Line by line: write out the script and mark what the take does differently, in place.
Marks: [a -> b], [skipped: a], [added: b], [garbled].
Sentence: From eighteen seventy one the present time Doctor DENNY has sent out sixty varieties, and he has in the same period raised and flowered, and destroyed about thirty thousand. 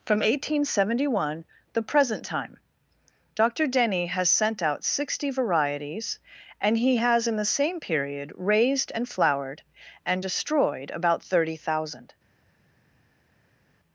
From eighteen seventy one the present time Doctor DENNY has sent out sixty varieties, and he has in the same period raised and flowered, and destroyed about thirty thousand.